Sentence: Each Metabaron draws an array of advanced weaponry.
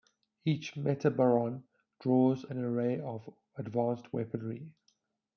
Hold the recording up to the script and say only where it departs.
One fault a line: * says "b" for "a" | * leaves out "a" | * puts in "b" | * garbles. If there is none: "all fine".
all fine